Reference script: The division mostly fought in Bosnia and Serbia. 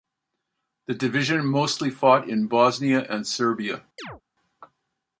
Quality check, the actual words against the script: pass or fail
pass